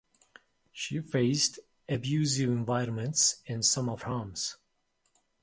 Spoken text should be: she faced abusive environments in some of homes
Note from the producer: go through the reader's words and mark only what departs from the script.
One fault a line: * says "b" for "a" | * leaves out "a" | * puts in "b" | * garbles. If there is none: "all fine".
all fine